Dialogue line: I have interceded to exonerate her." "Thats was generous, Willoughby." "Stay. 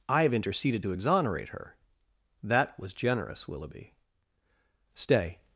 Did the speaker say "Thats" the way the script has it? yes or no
no